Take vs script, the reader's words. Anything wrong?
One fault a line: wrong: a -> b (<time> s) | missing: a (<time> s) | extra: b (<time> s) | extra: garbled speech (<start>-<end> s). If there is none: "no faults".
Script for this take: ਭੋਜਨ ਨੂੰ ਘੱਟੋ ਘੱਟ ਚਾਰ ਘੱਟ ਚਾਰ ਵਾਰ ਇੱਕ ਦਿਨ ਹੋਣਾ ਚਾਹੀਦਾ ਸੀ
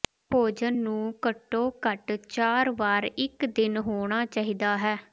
missing: ਘੱਟ ਚਾਰ (2.7 s)
wrong: ਸੀ -> ਹੈ (4.8 s)